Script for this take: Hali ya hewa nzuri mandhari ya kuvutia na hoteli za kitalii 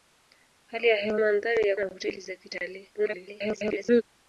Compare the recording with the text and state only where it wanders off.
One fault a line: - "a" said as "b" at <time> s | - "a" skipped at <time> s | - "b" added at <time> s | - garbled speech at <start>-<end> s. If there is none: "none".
- "nzuri" skipped at 1.2 s
- "kuvutia" skipped at 1.8 s
- garbled speech at 2.9-4.0 s